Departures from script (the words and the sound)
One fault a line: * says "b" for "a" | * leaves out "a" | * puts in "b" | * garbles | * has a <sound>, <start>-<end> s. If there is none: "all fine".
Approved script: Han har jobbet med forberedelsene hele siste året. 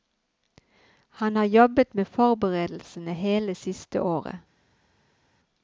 all fine